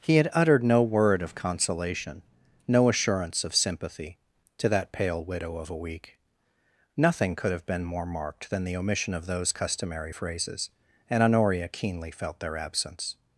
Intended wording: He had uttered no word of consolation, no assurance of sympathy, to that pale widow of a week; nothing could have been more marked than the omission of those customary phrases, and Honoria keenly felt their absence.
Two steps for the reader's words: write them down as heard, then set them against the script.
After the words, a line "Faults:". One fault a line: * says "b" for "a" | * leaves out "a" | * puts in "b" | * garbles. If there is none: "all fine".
He had uttered no word of consolation, no assurance of sympathy, to that pale widow of a week; nothing could have been more marked than the omission of those customary phrases, and Honoria keenly felt their absence.
Faults:
all fine